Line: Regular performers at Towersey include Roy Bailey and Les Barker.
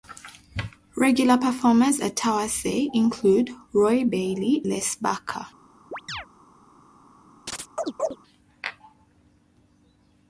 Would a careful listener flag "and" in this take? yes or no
yes